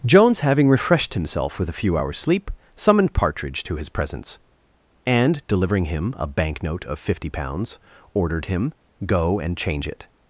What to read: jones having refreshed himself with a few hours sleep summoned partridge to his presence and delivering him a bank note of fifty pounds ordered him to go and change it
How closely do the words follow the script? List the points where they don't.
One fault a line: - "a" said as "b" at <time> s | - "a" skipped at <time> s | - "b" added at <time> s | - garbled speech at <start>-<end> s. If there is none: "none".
- "to" skipped at 8.7 s